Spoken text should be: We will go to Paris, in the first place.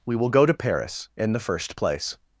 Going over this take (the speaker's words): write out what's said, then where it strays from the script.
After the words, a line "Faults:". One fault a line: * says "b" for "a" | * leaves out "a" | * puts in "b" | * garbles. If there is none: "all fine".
We will go to Paris, in the first place.
Faults:
all fine